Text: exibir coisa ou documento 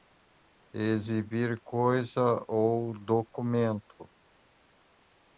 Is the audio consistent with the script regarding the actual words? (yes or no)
yes